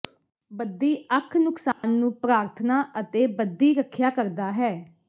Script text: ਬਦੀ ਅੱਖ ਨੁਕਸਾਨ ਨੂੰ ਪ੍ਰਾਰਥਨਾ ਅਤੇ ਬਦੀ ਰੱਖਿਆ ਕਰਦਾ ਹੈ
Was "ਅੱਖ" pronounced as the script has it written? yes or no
yes